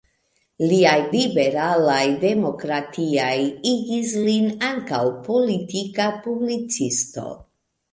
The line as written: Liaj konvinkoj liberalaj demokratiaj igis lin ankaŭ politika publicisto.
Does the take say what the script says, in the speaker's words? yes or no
no